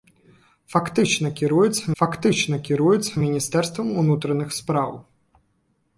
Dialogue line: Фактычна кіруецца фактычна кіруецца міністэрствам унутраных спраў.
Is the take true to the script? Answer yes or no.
yes